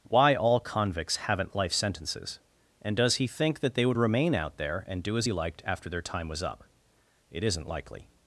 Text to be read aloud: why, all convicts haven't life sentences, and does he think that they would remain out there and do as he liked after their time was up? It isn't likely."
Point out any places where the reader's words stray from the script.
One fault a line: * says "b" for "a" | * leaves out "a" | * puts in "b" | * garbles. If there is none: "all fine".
all fine